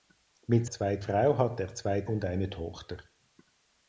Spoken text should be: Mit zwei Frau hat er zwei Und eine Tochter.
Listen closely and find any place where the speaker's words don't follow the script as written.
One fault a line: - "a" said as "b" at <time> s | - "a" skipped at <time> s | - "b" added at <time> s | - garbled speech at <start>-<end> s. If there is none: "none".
none